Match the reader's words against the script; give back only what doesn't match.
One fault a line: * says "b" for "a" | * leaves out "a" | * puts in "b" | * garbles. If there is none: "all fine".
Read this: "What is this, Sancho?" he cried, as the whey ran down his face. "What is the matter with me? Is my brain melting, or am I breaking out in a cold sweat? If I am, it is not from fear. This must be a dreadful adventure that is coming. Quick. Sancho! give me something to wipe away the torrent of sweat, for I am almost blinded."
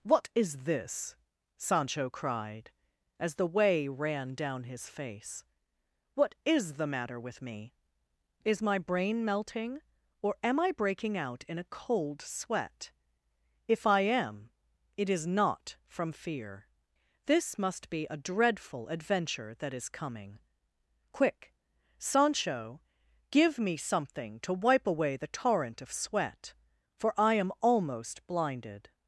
* leaves out "he"